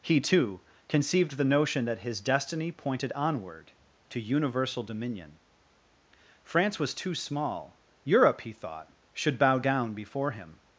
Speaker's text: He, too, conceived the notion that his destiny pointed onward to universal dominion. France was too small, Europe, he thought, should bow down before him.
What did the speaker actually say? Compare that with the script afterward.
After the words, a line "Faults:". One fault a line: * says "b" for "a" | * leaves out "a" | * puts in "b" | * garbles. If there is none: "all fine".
He, too, conceived the notion that his destiny pointed onward to universal dominion. France was too small, Europe, he thought, should bow down before him.
Faults:
all fine